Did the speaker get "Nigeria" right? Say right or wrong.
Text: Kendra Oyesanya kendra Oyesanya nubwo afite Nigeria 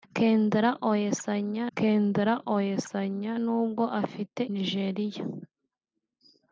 right